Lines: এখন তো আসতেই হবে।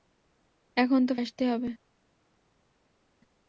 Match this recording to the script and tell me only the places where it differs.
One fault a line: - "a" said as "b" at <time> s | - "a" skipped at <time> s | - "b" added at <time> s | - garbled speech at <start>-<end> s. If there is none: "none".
none